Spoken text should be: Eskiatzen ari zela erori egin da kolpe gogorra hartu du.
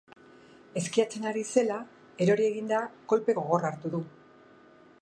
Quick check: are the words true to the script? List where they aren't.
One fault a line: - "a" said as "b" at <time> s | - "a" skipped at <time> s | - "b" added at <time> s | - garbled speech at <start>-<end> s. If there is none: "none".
none